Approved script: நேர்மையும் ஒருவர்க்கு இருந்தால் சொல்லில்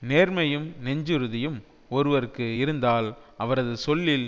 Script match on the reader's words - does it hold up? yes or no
no